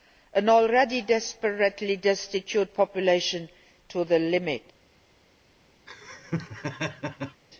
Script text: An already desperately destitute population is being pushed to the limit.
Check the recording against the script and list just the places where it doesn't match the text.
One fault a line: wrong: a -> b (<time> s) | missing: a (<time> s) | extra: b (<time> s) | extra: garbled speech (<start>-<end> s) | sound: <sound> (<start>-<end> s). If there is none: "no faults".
missing: is being pushed (3.5 s)
sound: laugh (5.9-7.4 s)